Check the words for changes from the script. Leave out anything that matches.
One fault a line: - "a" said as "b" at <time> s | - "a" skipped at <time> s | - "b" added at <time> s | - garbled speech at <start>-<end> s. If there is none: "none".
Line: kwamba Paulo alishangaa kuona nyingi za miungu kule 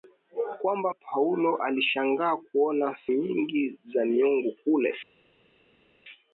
none